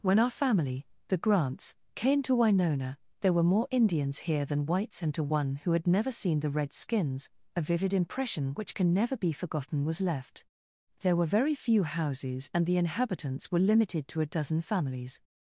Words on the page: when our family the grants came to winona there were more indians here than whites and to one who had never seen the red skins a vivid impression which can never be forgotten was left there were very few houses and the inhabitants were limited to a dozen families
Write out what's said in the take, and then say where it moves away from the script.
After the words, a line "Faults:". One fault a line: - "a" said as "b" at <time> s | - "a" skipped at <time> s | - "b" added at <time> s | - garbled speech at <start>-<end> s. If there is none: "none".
when our family the grants came to winona there were more indians here than whites and to one who had never seen the red skins a vivid impression which can never be forgotten was left there were very few houses and the inhabitants were limited to a dozen families
Faults:
none